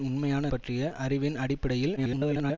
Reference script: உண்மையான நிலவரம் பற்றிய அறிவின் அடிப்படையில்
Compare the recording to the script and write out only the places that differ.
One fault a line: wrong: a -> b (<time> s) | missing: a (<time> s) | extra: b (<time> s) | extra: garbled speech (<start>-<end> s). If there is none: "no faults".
missing: நிலவரம் (0.5 s)
extra: garbled speech (2.0-2.6 s)